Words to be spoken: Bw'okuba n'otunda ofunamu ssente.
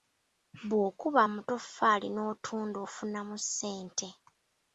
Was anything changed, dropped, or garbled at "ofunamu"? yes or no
no